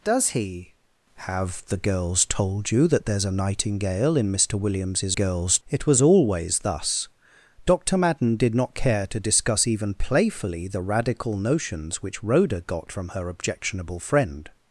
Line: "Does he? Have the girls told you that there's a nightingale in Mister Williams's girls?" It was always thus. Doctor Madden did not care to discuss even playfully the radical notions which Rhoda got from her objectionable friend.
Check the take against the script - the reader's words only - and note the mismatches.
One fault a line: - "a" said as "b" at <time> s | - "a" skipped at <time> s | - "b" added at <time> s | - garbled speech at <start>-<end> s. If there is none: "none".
none